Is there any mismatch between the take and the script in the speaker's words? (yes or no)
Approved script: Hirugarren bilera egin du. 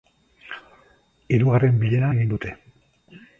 yes